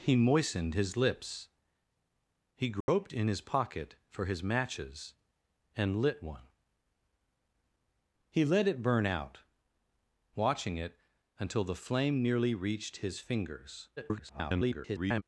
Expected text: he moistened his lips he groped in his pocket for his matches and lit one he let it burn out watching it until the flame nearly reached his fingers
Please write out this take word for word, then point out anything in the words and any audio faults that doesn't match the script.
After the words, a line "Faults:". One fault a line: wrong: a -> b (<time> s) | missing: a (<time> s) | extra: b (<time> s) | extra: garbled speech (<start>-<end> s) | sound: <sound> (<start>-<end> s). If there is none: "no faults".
he moistened his lips he groped in his pocket for his matches and lit one he let it burn out watching it until the flame nearly reached his fingers [garbled]
Faults:
sound: dropout (2.8-2.9 s)
extra: garbled speech (14.0-15.2 s)